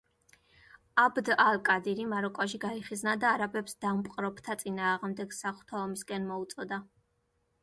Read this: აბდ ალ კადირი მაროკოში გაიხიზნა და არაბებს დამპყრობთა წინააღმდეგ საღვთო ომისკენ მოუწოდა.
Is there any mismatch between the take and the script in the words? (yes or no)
no